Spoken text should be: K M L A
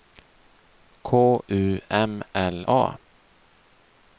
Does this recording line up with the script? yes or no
no